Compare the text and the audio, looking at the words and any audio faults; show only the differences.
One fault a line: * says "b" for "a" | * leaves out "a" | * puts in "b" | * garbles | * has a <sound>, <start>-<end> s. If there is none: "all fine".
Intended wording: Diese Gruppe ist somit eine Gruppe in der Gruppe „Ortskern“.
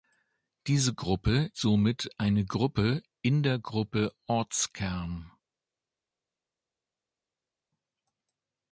* leaves out "ist"